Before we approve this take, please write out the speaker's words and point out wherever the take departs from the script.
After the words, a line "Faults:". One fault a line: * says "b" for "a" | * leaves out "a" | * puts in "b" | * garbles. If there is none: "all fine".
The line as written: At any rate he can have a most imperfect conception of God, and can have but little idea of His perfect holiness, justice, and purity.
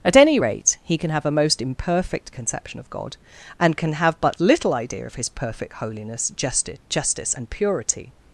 At any rate he can have a most imperfect conception of God, and can have but little idea of His perfect holiness, justice, justice and purity.
Faults:
* puts in "justice"